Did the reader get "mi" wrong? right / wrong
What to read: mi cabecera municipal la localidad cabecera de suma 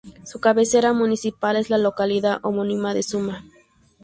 wrong